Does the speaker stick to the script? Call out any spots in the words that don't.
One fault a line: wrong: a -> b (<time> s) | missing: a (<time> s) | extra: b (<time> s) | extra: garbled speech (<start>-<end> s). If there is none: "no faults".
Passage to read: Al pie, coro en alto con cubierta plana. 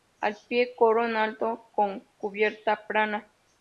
no faults